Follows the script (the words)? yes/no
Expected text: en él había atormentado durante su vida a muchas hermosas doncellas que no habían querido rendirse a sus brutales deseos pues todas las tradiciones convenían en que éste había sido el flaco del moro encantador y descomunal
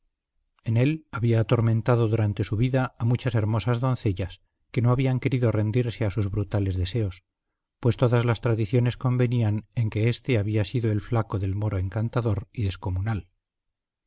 yes